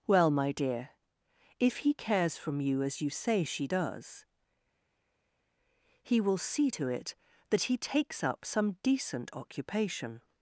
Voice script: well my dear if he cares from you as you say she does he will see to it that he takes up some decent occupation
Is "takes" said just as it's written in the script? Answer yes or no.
yes